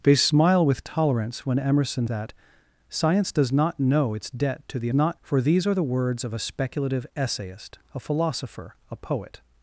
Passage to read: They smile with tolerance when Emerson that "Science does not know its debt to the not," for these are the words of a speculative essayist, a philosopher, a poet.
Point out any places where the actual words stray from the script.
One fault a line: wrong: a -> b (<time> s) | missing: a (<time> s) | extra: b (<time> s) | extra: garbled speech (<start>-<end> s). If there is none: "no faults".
no faults